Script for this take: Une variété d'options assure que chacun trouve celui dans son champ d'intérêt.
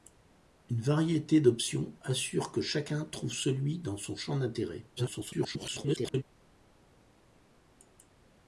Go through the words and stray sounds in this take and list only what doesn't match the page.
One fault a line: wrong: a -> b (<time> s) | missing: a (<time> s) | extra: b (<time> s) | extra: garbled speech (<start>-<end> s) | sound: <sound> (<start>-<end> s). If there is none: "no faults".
extra: garbled speech (5.0-6.2 s)